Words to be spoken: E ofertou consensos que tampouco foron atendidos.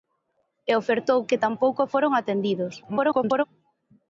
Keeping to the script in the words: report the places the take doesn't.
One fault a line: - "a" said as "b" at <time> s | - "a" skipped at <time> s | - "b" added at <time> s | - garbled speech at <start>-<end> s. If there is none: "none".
- "consensos" skipped at 1.2 s
- garbled speech at 2.8-3.4 s